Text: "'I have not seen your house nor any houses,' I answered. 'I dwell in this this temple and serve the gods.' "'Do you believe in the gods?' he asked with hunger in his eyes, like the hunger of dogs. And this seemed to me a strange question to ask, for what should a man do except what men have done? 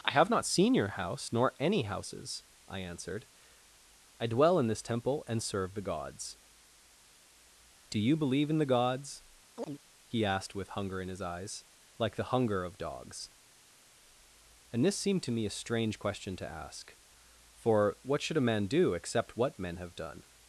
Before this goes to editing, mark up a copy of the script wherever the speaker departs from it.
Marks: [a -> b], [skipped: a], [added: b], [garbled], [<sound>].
"'I have not seen your house nor any houses,' I answered. 'I dwell in this [skipped: this] temple and serve the gods.' "'Do you believe in the gods?' [chirp] he asked with hunger in his eyes, like the hunger of dogs. And this seemed to me a strange question to ask, for what should a man do except what men have done?